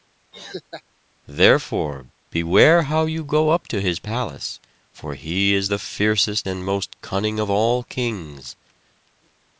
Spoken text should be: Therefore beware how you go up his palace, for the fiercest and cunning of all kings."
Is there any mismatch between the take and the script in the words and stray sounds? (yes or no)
yes